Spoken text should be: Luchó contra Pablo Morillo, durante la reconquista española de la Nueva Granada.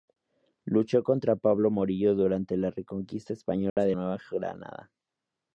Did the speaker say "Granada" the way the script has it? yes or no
yes